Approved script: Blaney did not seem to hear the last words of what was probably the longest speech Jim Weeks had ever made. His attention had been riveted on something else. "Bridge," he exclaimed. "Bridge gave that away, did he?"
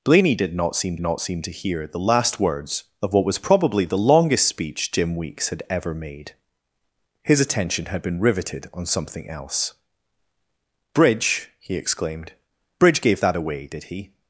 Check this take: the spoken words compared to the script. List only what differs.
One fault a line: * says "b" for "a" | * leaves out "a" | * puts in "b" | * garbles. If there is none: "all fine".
* puts in "not seem"